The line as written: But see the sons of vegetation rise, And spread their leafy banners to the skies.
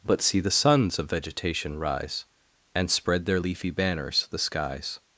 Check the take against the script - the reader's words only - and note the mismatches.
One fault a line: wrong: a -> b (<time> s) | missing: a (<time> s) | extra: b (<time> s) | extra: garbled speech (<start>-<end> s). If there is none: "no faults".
missing: to (4.3 s)